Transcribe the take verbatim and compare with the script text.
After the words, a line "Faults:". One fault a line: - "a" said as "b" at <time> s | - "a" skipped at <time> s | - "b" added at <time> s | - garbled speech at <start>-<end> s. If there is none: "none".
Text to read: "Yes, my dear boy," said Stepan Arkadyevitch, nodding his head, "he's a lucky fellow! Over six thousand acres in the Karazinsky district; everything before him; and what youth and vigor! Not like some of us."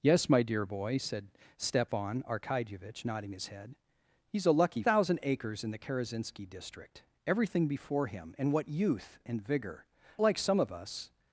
"Yes, my dear boy," said Stepan Arkadyevitch, nodding his head, "he's a lucky thousand acres in the Karazinsky district; everything before him; and what youth and vigor! Like some of us."
Faults:
- "fellow Over six" skipped at 4.8 s
- "Not" skipped at 9.9 s